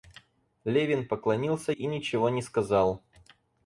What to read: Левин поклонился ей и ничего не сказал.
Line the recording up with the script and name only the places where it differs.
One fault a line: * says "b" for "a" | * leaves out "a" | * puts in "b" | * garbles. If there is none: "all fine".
* leaves out "ей"